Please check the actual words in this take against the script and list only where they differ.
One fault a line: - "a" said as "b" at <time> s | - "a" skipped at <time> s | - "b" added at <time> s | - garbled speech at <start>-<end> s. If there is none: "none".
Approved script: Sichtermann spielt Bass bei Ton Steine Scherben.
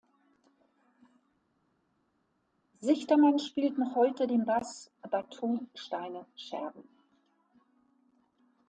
- "noch heute den" added at 3.8 s